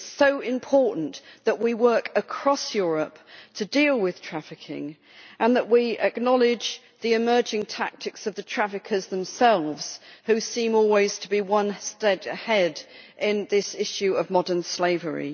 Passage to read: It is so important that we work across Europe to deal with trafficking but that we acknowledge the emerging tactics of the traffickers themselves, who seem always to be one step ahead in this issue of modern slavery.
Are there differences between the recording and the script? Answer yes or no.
yes